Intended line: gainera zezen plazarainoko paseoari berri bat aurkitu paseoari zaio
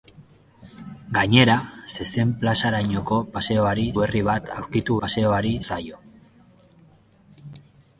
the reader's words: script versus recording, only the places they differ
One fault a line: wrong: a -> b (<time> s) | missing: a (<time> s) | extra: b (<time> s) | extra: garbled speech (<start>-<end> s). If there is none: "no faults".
no faults